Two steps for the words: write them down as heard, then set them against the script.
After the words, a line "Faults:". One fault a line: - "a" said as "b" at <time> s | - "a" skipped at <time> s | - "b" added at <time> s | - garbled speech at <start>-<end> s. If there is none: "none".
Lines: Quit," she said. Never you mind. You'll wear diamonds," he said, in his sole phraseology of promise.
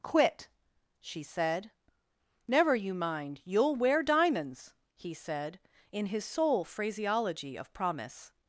Quit," she said. Never you mind. You'll wear diamonds," he said, in his sole phraseology of promise.
Faults:
none